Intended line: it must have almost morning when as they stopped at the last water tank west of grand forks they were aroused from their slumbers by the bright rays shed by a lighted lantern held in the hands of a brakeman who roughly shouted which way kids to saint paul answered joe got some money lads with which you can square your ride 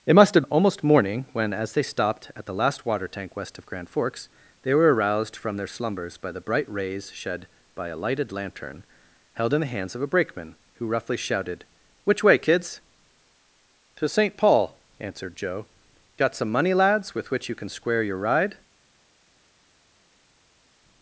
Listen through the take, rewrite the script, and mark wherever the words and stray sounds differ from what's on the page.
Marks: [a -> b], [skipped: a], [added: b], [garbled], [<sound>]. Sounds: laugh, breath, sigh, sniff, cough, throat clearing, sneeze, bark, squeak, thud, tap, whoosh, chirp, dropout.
it must have almost morning when as they stopped at the last water tank west of grand forks they were aroused from their slumbers by the bright rays shed by a lighted lantern held in the hands of a brakeman who roughly shouted which way kids to saint paul answered joe got some money lads with which you can square your ride